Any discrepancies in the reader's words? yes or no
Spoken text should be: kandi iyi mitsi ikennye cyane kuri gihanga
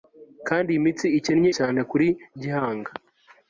no